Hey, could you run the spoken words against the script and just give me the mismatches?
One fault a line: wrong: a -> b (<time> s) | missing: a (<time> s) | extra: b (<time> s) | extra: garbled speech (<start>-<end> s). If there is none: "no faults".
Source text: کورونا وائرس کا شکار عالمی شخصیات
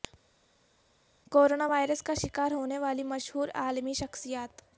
extra: ہونے والی مشہور (2.5 s)